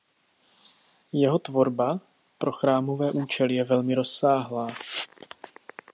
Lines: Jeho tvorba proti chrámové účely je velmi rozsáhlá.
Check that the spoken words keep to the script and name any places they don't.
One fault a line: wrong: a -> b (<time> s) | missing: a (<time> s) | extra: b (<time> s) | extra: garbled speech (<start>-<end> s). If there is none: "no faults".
wrong: proti -> pro (2.4 s)